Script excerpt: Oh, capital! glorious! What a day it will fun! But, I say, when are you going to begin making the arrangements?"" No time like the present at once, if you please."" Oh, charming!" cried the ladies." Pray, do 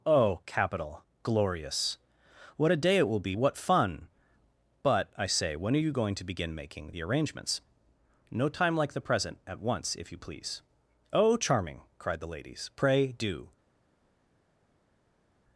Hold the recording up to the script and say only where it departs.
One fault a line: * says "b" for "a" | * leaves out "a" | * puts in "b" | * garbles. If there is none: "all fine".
* puts in "be what"